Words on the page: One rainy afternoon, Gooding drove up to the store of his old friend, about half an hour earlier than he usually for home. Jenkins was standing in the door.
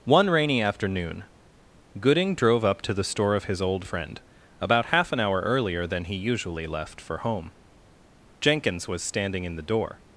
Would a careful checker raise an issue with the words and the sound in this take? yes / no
yes